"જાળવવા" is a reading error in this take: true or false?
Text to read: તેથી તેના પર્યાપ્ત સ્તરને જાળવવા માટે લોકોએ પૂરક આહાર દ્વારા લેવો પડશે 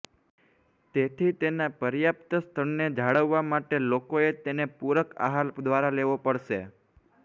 false